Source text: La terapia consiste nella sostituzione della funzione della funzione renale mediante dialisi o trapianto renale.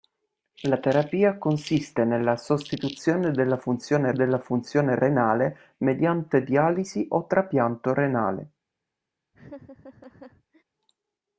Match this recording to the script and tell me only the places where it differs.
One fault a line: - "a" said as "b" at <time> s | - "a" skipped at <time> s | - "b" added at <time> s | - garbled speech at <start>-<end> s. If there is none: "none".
none